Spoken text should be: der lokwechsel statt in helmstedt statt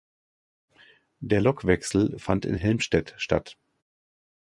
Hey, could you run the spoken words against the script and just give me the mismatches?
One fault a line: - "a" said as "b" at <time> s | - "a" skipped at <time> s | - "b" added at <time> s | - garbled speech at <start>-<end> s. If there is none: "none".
- "statt" said as "fand" at 2.2 s